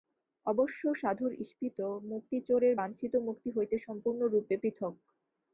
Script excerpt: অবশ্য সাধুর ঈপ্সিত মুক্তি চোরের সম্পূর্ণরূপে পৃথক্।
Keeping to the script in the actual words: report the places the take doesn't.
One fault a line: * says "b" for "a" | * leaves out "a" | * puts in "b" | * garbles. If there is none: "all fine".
* puts in "বাঞ্ছিত মুক্তি হইতে"